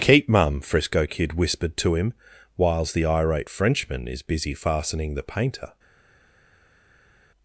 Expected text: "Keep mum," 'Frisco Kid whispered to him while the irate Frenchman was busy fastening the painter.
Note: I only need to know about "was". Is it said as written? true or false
false